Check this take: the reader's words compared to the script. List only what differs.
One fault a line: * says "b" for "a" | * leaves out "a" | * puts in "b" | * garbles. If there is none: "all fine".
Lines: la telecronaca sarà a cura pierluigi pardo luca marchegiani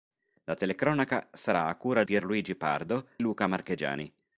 all fine